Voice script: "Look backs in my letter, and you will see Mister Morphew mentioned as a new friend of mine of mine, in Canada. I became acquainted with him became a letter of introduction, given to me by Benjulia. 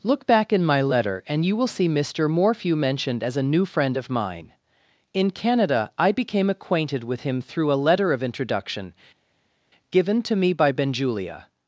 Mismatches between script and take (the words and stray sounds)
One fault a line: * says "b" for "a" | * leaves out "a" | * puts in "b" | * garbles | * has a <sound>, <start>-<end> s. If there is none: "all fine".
* says "back" for "backs"
* leaves out "of mine"
* says "through" for "became"